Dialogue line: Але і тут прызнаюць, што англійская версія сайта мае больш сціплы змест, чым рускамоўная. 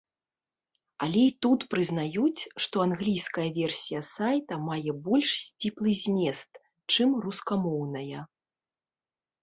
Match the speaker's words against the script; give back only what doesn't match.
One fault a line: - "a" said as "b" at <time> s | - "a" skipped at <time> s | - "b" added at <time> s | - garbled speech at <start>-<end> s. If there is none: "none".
none